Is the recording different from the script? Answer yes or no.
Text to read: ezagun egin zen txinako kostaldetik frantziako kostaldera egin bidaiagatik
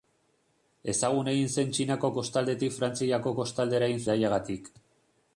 no